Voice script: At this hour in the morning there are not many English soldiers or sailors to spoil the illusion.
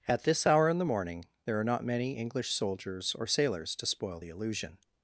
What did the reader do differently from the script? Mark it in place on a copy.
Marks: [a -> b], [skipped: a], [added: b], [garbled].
At this hour in the morning there are not many English soldiers or sailors to spoil the illusion.